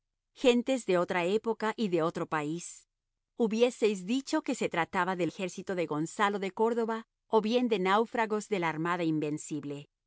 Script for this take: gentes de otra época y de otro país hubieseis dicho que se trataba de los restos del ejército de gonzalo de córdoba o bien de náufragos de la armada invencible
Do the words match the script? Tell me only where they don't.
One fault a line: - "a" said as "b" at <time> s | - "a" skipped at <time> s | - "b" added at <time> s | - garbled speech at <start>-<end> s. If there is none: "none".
- "los restos del" skipped at 5.3 s